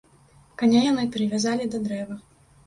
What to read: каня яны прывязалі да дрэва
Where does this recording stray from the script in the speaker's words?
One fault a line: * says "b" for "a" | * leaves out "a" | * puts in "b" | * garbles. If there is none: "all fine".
all fine